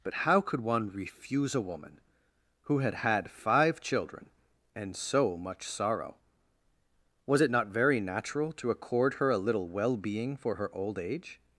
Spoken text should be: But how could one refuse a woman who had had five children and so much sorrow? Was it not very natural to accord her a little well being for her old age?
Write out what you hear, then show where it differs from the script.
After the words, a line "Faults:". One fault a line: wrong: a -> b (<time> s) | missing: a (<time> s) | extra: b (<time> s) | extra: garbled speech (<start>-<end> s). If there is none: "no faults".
But how could one refuse a woman who had had five children and so much sorrow? Was it not very natural to accord her a little well being for her old age?
Faults:
no faults